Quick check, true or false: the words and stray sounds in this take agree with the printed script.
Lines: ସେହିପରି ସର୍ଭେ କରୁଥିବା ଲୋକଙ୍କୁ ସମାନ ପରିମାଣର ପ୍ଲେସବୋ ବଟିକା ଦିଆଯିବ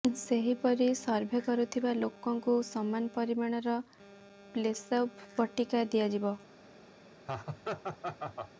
false